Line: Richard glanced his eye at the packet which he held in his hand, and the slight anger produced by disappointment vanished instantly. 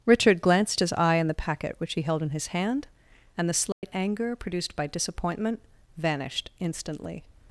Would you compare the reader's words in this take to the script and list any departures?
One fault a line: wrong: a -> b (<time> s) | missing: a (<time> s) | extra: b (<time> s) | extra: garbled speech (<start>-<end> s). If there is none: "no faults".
wrong: at -> in (1.2 s)